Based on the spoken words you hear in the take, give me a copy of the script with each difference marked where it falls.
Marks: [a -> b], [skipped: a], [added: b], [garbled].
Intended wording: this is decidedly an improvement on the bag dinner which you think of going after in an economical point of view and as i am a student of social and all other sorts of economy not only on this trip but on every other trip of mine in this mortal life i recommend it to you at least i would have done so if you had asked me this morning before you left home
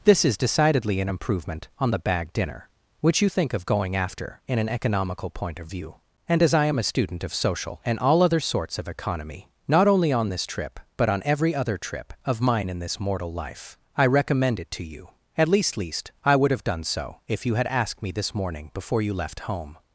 this is decidedly an improvement on the bag dinner which you think of going after in an economical point of view and as i am a student of social and all other sorts of economy not only on this trip but on every other trip of mine in this mortal life i recommend it to you at least [added: least] i would have done so if you had asked me this morning before you left home